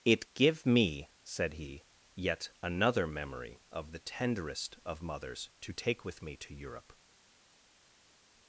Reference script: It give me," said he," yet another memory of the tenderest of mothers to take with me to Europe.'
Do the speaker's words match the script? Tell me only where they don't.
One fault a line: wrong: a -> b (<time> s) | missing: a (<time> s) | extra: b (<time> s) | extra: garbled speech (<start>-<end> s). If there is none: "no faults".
no faults